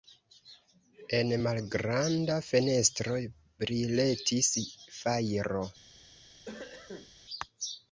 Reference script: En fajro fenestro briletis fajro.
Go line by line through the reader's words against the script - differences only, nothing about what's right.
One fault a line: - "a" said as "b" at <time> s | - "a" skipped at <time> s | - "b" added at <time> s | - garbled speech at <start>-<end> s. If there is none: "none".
- "fajro" said as "malgranda" at 1.5 s